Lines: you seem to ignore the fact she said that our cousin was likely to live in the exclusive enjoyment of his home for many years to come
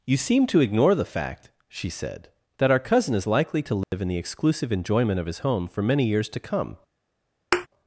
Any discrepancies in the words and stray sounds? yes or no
yes